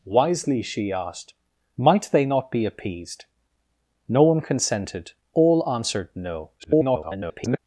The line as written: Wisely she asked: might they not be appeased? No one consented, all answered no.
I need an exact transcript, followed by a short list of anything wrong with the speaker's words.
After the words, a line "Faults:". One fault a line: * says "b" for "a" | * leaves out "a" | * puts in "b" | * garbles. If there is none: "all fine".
Wisely she asked: might they not be appeased? No one consented, all answered no. [garbled]
Faults:
* garbles